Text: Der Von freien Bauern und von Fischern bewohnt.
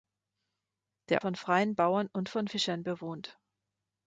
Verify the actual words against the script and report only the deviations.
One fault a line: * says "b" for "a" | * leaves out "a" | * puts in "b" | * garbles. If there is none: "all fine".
all fine